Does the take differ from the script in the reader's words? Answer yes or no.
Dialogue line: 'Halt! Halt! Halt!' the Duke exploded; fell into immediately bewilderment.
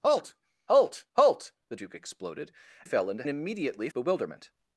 no